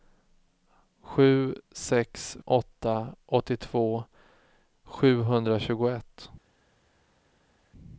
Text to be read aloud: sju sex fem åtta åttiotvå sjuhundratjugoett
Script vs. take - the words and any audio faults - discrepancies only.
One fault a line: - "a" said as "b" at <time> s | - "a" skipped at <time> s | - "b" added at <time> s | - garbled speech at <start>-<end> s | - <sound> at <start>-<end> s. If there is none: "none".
- "fem" skipped at 2.4 s